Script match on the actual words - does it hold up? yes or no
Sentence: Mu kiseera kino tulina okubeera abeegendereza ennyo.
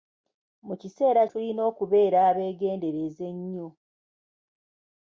no